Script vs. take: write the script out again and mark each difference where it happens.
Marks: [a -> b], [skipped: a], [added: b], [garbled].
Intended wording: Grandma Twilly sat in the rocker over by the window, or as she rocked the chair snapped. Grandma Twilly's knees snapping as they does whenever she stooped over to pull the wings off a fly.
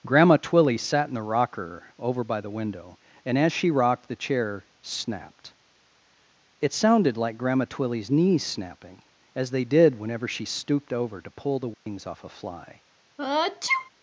Grandma Twilly sat in the rocker over by the window, [or -> and] as she rocked the chair snapped. [added: It sounded like] Grandma Twilly's knees snapping as they [does -> did] whenever she stooped over to pull the wings off a fly.